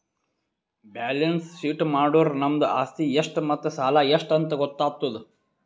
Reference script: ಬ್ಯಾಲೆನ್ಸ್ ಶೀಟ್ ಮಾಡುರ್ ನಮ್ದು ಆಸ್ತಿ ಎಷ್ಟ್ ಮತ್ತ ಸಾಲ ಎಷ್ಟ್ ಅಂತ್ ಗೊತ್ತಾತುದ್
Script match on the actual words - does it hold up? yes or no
yes